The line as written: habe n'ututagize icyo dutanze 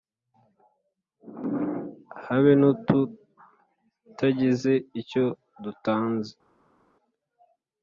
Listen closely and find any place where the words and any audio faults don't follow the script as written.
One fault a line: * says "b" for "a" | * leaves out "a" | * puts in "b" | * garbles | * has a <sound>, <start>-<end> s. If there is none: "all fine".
all fine